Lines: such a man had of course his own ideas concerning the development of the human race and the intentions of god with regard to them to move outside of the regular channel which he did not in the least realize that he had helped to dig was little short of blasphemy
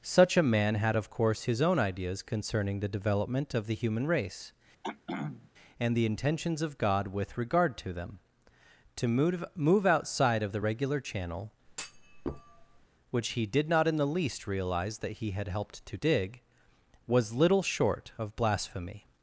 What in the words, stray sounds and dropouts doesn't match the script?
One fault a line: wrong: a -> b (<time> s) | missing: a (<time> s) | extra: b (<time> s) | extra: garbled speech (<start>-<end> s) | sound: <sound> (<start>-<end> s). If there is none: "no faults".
sound: throat clearing (4.8-5.5 s)
extra: move (9.5 s)
sound: thud (11.7-12.9 s)